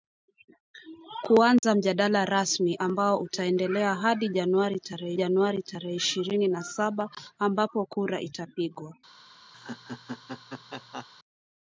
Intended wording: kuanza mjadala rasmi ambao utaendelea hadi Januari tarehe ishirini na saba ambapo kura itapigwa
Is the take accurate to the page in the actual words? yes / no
no